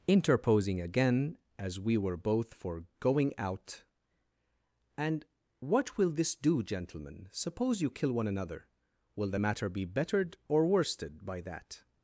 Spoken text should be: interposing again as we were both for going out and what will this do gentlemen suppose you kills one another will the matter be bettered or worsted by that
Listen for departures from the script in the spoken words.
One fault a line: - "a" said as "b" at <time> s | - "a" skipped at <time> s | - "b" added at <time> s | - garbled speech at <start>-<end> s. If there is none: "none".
- "kills" said as "kill" at 7.9 s